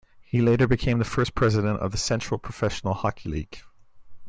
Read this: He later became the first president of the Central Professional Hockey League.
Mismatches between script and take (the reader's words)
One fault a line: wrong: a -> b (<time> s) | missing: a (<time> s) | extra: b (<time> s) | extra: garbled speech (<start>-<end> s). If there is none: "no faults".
no faults